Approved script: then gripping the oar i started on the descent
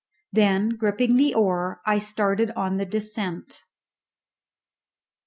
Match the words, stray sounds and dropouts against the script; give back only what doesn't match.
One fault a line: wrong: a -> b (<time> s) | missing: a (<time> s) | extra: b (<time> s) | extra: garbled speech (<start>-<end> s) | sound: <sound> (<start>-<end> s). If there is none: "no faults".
no faults